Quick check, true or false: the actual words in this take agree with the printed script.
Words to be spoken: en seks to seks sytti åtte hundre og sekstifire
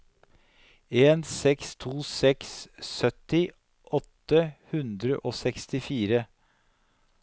true